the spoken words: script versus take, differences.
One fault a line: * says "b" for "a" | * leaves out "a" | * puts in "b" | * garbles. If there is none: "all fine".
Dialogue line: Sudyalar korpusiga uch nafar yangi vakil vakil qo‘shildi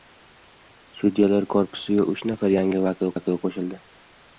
all fine